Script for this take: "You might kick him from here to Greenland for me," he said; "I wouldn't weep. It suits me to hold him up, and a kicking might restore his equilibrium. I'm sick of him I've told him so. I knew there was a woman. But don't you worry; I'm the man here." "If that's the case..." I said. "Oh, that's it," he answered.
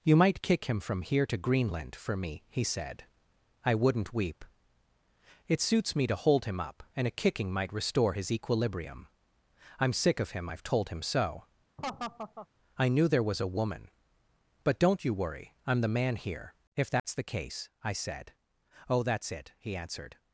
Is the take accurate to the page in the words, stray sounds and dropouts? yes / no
no